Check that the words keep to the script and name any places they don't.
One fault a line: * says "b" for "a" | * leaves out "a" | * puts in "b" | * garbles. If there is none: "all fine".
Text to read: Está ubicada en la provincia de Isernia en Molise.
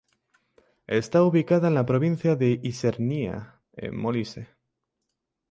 all fine